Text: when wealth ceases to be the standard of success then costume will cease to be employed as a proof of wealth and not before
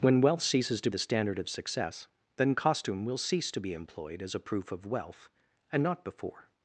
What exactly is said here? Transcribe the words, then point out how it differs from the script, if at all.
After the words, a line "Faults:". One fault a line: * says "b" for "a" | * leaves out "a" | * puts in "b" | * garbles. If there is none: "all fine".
when wealth ceases to the standard of success then costume will cease to be employed as a proof of wealth and not before
Faults:
* leaves out "be"